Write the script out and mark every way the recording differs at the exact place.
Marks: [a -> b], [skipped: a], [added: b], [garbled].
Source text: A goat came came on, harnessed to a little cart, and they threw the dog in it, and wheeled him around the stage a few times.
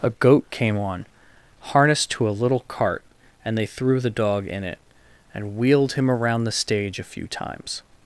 A goat came [skipped: came] on, harnessed to a little cart, and they threw the dog in it, and wheeled him around the stage a few times.